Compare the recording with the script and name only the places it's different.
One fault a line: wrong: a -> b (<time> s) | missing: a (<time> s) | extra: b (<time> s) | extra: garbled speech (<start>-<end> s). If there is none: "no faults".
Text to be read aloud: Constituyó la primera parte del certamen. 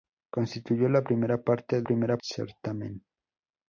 wrong: del -> primera (1.8 s)